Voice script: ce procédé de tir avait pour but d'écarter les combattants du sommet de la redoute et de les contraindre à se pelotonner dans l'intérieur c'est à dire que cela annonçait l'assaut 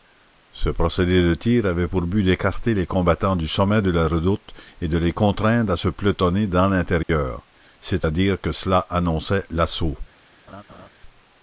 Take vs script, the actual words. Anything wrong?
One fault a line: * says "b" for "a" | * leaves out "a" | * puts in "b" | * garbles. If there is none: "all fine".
all fine